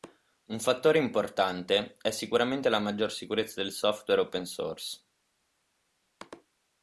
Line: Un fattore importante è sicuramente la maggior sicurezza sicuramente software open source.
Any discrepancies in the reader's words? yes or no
yes